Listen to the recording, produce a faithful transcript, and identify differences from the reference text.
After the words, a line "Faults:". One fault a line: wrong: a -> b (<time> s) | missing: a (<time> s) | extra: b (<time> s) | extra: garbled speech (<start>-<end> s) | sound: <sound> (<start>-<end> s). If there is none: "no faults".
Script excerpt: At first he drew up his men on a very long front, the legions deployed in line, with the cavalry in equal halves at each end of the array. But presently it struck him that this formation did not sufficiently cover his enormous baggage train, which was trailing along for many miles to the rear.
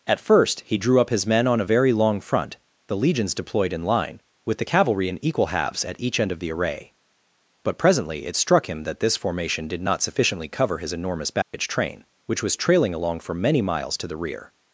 At first he drew up his men on a very long front, the legions deployed in line, with the cavalry in equal halves at each end of the array. But presently it struck him that this formation did not sufficiently cover his enormous baggage train, which was trailing along for many miles to the rear.
Faults:
sound: dropout (11.4-11.5 s)